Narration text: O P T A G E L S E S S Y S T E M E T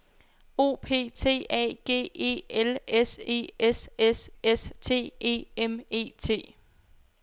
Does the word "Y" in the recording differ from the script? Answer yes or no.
yes